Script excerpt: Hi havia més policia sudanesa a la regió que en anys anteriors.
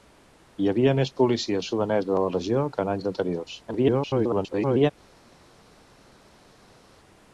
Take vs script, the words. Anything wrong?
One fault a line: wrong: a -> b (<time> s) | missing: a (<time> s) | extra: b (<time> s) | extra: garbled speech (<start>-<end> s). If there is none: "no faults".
extra: garbled speech (3.7-4.9 s)